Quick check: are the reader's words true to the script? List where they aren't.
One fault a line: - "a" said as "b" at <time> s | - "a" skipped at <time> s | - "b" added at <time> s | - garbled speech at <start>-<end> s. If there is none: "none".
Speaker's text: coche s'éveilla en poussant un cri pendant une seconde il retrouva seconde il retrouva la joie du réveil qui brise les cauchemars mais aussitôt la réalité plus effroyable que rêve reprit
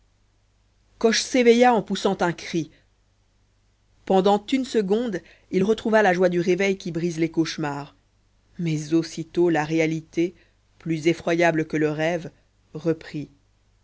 - "seconde il retrouva" skipped at 6.0 s
- "le" added at 11.8 s